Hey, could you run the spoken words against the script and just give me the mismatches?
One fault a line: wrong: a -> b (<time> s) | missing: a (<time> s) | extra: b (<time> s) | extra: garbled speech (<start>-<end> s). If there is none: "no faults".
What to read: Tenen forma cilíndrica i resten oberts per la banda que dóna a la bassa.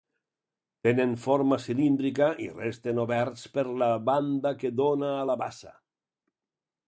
no faults